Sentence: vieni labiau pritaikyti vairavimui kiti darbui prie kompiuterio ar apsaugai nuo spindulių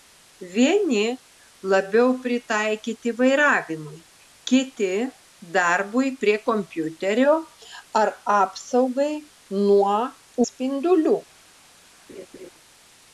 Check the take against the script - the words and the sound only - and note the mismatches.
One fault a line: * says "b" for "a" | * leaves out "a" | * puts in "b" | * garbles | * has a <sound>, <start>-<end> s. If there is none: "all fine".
* has a laugh, 12.1-12.5 s